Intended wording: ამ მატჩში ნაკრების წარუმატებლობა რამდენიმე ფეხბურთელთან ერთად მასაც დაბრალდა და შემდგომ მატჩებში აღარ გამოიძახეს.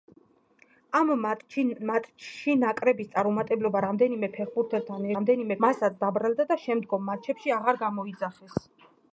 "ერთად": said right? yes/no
no